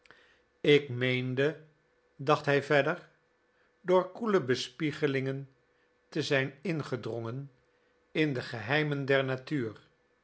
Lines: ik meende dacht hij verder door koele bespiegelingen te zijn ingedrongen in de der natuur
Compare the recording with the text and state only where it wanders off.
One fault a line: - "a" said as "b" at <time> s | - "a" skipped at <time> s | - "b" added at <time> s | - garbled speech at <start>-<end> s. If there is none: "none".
- "geheimen" added at 8.4 s